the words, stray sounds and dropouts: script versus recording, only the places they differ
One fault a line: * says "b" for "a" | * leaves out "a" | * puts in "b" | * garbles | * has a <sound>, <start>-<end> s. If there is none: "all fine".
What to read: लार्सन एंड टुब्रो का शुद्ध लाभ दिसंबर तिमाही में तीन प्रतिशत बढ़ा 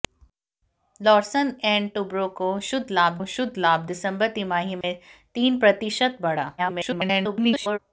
* puts in "शुद्ध लाभ"
* has a dropout, 4.8-4.8 s
* garbles